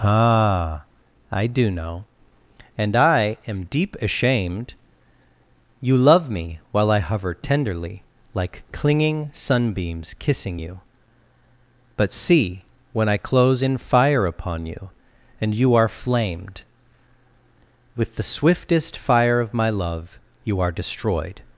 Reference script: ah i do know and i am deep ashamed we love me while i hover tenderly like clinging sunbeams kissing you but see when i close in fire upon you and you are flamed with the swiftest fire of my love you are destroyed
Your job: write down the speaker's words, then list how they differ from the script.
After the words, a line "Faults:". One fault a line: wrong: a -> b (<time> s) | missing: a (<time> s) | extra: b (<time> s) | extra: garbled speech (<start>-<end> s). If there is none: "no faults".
ah i do know and i am deep ashamed you love me while i hover tenderly like clinging sunbeams kissing you but see when i close in fire upon you and you are flamed with the swiftest fire of my love you are destroyed
Faults:
wrong: we -> you (5.8 s)